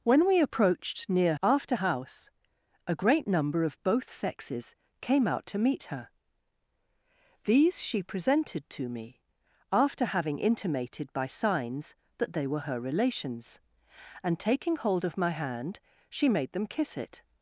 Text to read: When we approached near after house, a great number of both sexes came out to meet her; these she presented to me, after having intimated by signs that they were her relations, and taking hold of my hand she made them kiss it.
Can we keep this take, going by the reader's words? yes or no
yes